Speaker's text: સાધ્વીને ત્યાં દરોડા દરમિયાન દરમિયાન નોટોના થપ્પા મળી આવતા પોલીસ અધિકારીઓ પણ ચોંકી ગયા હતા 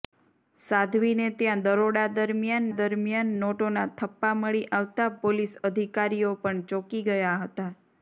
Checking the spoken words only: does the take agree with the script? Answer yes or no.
yes